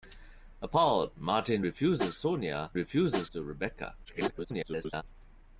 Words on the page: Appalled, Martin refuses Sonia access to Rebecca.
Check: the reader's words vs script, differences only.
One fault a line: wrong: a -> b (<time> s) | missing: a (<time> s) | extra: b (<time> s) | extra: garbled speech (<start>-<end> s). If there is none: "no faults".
wrong: access -> refuses (2.7 s)
extra: garbled speech (4.0-5.0 s)